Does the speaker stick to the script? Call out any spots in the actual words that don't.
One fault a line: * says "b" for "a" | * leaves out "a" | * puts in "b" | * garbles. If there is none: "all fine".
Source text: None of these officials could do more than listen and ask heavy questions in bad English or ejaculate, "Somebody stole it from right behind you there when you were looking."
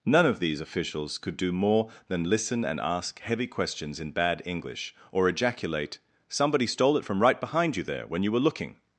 all fine